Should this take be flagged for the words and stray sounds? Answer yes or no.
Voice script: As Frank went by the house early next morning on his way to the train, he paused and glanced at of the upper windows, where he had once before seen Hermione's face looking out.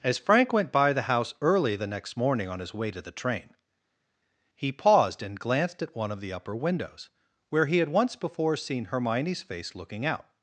yes